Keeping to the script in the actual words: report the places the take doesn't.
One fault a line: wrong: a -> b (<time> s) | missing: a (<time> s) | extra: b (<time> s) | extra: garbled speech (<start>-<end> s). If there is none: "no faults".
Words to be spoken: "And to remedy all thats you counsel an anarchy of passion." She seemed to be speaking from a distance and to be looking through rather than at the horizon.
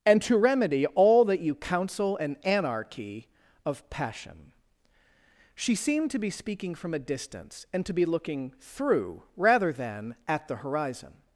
wrong: thats -> that (1.2 s)